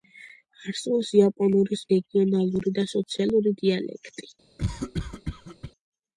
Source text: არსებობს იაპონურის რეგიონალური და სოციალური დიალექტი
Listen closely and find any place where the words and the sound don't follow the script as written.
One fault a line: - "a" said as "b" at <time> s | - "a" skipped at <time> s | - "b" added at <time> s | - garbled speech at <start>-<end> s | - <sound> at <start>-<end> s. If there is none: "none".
- cough at 4.6-5.7 s